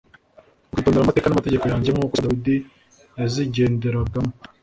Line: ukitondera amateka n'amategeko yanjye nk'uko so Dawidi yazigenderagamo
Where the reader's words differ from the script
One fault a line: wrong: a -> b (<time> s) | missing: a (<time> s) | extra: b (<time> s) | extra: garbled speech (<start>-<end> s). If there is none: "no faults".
no faults